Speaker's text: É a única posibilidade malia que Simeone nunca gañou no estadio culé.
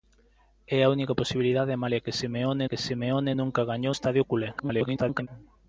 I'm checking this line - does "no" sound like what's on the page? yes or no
no